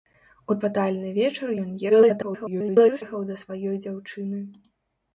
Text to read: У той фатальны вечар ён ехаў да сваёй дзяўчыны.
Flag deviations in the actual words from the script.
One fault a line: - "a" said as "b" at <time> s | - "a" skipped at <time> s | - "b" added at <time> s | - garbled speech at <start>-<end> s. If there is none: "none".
- "той" skipped at 0.6 s
- garbled speech at 1.9-3.0 s